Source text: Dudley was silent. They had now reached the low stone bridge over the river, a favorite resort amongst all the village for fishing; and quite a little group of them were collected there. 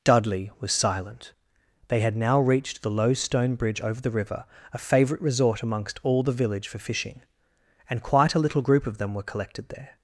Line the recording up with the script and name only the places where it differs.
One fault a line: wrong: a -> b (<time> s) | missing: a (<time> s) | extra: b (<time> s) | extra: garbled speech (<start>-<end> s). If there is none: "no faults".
no faults